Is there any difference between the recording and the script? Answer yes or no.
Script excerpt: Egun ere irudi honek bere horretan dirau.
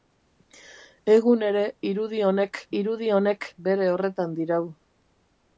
yes